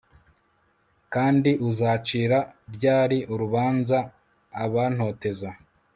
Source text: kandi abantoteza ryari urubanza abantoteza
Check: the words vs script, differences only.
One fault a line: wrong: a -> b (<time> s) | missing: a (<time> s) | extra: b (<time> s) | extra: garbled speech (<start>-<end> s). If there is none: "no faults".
wrong: abantoteza -> uzacira (1.7 s)